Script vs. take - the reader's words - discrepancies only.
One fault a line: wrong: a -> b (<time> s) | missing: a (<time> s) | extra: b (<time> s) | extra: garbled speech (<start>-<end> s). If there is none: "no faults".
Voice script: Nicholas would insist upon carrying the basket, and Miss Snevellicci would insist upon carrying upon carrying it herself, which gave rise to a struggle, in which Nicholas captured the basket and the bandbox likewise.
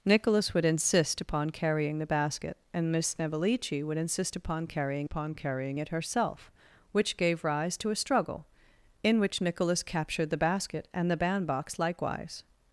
no faults